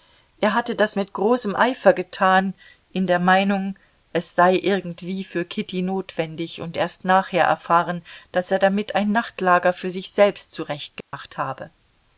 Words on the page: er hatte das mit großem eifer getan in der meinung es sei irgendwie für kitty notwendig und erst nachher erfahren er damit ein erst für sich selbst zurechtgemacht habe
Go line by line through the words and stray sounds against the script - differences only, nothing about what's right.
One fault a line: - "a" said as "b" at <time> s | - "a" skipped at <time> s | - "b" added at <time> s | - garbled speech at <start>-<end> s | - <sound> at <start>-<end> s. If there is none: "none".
- "daß" added at 8.3 s
- "erst" said as "nachtlager" at 9.1 s
- dropout at 11.0-11.1 s